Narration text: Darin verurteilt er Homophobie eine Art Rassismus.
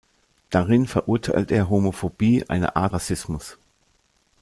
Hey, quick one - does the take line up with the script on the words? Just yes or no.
yes